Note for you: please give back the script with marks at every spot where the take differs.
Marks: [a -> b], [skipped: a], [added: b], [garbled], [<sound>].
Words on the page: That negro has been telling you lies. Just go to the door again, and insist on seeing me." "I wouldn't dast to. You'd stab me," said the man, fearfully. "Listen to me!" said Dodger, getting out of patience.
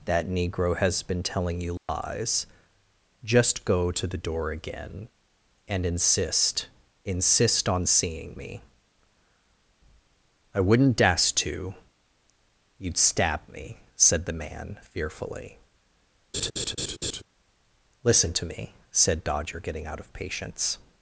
That negro has been telling you lies. [dropout] Just go to the door again, and insist [added: insist] on seeing me." "I wouldn't dast to. You'd stab me," said the man, fearfully. [laugh] "Listen to me!" said Dodger, getting out of patience.